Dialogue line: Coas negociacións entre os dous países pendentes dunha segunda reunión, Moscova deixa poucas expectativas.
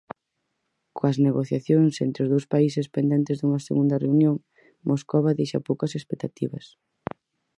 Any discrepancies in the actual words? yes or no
no